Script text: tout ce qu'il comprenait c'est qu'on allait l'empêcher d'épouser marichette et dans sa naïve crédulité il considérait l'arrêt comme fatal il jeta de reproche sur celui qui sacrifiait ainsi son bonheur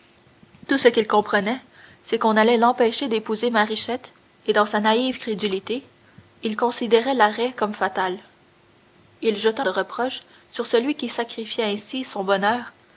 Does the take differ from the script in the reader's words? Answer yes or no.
no